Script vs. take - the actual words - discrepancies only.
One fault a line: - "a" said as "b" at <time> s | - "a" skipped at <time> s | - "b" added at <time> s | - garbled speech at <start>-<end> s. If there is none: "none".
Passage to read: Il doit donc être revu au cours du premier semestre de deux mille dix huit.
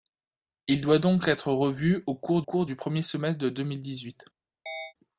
- "cours" added at 2.4 s